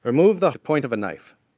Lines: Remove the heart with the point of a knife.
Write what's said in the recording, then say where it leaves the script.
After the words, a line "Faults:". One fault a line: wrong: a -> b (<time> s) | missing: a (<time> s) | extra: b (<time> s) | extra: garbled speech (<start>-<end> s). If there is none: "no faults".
Remove the the point of a knife.
Faults:
missing: heart with (0.5 s)